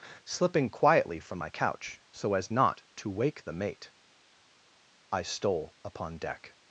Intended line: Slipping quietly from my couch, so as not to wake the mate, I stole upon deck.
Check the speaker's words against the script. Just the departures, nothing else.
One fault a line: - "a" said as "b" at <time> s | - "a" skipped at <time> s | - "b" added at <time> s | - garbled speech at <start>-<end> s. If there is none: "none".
none